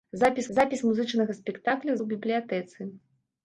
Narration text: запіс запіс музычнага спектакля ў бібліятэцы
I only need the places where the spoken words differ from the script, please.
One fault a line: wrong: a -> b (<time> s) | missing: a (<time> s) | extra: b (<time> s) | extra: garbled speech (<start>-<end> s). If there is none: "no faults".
no faults